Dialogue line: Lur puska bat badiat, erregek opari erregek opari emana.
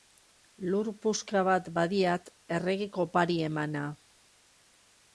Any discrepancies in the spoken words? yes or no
yes